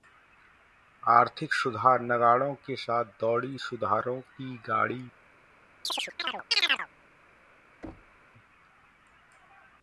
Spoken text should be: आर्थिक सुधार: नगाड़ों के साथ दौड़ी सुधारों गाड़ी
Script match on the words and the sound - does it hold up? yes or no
no